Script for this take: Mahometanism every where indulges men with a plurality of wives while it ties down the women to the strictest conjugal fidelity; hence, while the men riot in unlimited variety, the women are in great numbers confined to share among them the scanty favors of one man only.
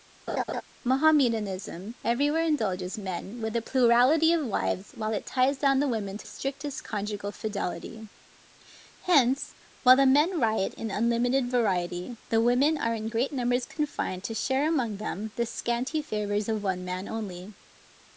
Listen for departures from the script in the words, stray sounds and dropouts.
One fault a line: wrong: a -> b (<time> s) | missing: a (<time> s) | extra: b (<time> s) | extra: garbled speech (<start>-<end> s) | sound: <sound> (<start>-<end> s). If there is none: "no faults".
sound: laugh (0.3-0.6 s)
missing: the (6.3 s)